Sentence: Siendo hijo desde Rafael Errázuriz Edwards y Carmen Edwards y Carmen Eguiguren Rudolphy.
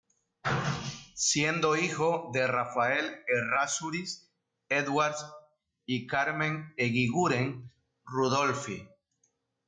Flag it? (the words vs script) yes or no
yes